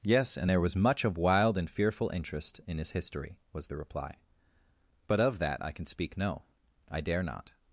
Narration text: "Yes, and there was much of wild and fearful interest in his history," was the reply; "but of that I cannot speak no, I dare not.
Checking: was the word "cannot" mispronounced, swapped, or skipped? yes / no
yes